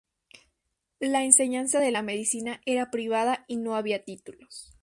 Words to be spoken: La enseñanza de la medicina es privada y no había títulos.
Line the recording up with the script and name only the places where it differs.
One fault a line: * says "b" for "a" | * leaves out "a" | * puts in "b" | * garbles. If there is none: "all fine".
* says "era" for "es"